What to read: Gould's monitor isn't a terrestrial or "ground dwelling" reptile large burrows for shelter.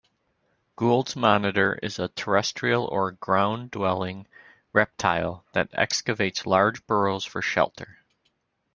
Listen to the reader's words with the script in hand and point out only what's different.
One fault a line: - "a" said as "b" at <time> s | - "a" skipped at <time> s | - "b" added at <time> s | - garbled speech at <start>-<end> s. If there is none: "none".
- "isn't" said as "is" at 1.8 s
- "that excavates" added at 5.5 s